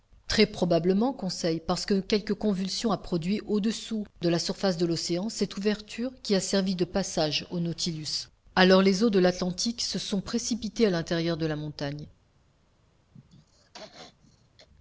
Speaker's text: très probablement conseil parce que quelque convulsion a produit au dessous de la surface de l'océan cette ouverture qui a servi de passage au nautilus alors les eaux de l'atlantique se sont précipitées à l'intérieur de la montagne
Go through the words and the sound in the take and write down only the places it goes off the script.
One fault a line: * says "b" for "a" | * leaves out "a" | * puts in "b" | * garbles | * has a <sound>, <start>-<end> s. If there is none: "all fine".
* has a throat clearing, 13.1-14.7 s